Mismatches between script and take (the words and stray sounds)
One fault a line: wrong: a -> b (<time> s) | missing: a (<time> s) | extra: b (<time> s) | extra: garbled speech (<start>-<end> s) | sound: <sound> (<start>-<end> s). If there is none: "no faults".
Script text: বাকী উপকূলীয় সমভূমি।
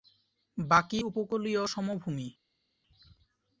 no faults